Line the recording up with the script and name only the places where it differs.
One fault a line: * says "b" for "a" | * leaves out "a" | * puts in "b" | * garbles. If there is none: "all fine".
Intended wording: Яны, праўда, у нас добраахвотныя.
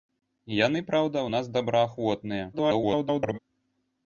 * garbles